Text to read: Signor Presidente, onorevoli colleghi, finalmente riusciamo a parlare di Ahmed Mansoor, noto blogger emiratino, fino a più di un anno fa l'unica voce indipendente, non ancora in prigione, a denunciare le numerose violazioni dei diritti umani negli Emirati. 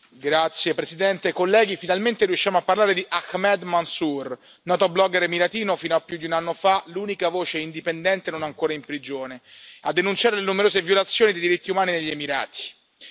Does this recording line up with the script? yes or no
yes